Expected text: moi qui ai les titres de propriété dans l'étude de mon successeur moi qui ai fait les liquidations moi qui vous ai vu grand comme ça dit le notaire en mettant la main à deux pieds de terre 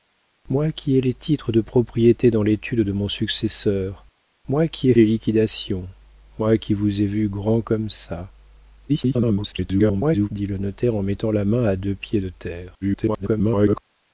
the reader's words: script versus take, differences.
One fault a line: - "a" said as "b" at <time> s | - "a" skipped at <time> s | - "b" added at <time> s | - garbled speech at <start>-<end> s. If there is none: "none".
- "fait" skipped at 5.0 s
- garbled speech at 8.9-10.3 s
- garbled speech at 12.8-13.8 s